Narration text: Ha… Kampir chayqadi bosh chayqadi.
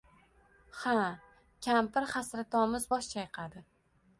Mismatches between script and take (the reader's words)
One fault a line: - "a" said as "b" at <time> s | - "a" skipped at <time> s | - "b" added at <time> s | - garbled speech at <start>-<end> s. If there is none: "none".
- "chayqadi" said as "hasratomuz" at 2.1 s